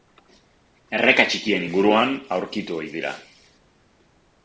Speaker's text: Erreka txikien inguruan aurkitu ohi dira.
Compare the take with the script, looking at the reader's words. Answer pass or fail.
pass